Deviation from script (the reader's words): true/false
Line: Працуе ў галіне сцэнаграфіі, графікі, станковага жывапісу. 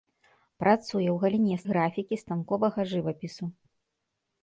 true